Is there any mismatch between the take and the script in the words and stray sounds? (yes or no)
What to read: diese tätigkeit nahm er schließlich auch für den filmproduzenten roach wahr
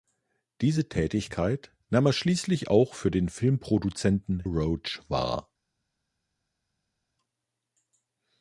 no